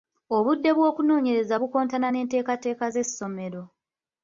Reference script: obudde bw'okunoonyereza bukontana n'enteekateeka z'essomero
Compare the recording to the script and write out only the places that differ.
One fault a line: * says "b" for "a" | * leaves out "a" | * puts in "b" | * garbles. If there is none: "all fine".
all fine